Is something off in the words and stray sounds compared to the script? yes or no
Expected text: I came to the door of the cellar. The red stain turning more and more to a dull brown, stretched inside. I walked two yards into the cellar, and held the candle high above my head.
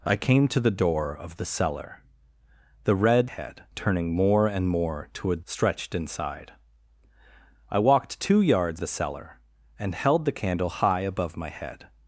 yes